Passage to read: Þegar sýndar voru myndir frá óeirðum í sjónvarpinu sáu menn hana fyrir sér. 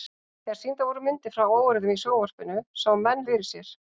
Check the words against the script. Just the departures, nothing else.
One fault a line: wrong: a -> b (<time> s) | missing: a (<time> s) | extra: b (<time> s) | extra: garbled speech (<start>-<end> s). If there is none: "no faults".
missing: hana (3.2 s)